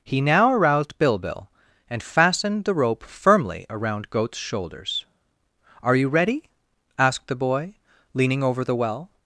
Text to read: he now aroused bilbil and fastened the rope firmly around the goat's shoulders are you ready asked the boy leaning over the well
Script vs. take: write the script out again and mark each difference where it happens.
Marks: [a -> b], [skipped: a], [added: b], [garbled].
he now aroused bilbil and fastened the rope firmly around [skipped: the] goat's shoulders are you ready asked the boy leaning over the well